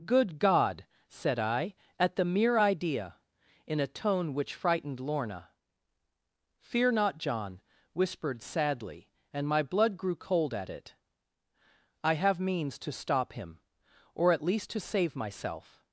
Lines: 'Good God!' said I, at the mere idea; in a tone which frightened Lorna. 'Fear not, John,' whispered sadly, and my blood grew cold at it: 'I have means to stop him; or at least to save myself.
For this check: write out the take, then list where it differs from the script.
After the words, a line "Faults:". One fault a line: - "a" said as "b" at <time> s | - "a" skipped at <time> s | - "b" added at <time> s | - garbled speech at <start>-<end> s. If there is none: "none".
'Good God!' said I, at the mere idea; in a tone which frightened Lorna. 'Fear not, John,' whispered sadly, and my blood grew cold at it: 'I have means to stop him; or at least to save myself.
Faults:
none